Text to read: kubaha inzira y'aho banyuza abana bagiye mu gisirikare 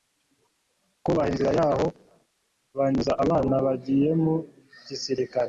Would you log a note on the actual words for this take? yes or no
no